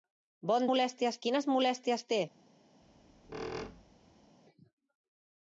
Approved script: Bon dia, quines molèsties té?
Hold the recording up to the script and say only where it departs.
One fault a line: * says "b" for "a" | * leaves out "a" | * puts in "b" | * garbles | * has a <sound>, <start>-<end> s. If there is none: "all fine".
* says "molèsties" for "dia"
* has a squeak, 2.8-4.4 s